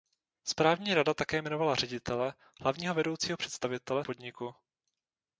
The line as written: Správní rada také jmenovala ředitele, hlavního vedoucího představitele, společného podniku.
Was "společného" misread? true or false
true